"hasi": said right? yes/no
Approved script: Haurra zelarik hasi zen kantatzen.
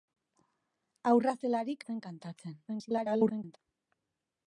no